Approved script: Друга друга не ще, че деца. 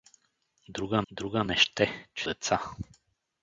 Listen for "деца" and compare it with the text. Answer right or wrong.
right